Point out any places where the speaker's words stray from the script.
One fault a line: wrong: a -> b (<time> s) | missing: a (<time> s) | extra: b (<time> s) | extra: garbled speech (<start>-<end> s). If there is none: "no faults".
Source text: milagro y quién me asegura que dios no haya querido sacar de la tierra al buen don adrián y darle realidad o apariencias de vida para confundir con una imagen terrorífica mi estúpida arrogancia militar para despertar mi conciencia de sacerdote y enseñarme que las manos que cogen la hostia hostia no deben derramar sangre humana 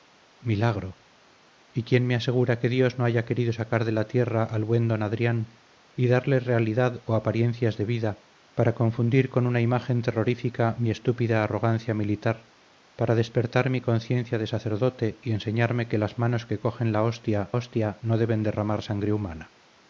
no faults